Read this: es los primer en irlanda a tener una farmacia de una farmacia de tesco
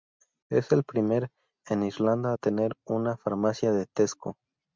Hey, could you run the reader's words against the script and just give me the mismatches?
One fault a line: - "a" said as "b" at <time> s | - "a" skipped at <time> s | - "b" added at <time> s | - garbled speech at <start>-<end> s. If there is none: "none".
- "los" said as "el" at 0.7 s
- "una farmacia de" skipped at 3.8 s